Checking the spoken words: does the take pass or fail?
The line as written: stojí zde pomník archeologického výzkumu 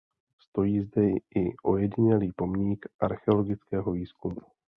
fail